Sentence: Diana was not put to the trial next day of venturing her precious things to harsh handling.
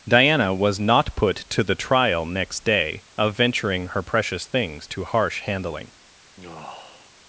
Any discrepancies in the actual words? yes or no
no